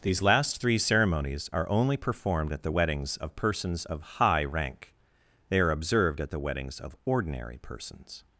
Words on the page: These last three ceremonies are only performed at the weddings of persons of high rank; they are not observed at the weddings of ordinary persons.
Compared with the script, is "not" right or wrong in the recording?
wrong